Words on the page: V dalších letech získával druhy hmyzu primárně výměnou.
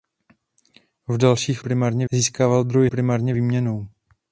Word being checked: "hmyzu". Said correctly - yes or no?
no